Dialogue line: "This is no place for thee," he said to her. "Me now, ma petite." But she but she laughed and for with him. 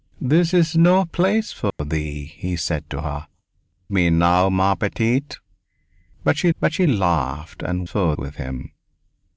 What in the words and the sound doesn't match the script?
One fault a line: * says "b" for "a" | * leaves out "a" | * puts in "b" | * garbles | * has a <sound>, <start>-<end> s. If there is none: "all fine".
* has a dropout, 1.7-1.8 s